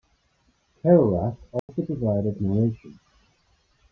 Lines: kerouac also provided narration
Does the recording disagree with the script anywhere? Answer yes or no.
no